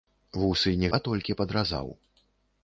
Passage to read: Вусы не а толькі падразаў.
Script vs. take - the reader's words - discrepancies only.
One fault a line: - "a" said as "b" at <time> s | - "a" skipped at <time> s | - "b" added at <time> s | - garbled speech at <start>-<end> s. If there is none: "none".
none